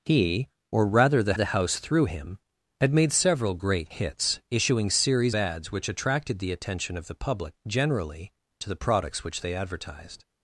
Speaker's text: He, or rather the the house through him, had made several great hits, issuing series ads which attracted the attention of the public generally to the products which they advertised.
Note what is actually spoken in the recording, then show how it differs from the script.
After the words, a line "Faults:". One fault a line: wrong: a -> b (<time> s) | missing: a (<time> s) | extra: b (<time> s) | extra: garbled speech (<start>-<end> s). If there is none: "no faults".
He, or rather the the house through him, had made several great hits, issuing series ads which attracted the attention of the public generally to the products which they advertised.
Faults:
no faults